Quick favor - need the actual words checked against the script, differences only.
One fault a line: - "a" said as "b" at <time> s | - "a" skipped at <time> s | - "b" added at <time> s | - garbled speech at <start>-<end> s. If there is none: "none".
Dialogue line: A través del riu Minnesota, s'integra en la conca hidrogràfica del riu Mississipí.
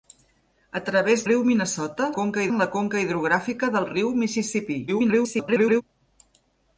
- "del" skipped at 1.2 s
- "s'integra" said as "conca" at 2.2 s
- garbled speech at 4.9-5.8 s